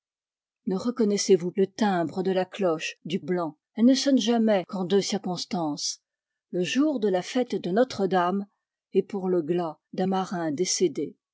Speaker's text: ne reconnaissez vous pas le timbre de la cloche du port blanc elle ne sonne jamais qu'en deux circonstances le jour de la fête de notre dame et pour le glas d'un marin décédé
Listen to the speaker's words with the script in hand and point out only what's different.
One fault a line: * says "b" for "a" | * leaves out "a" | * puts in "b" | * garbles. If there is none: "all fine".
* leaves out "pas"
* leaves out "port"